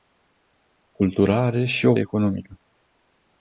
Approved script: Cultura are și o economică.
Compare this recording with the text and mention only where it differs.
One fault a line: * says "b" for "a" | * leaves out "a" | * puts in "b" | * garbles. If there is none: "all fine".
all fine